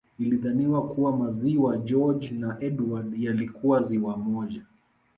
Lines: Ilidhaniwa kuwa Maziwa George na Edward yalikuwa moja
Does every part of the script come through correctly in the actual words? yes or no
no